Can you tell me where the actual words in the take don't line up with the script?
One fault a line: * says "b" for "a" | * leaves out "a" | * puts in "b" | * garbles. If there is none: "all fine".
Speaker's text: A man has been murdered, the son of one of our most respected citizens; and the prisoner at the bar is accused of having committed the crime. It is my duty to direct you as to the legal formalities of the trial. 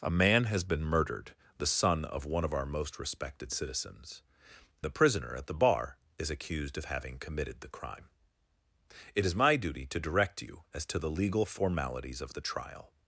* leaves out "and"